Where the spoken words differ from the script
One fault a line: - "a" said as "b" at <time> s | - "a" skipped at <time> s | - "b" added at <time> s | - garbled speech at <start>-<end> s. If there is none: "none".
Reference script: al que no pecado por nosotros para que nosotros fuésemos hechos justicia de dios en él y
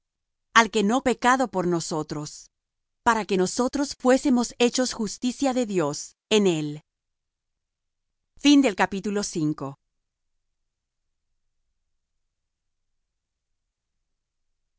none